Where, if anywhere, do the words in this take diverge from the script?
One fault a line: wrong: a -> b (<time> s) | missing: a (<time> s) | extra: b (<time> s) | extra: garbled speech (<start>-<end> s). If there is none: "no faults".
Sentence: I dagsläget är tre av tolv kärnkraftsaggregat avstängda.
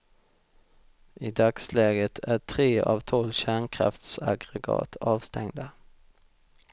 no faults